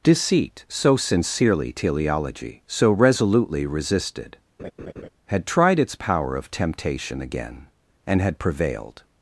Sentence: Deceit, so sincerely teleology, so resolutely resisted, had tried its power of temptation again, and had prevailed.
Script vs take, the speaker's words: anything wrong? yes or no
no